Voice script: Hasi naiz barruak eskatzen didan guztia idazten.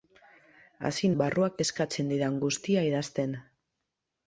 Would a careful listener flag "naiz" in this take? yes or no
yes